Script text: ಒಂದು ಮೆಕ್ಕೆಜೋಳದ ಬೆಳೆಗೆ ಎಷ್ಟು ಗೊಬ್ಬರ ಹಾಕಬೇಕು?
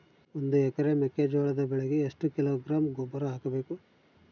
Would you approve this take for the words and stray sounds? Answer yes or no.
no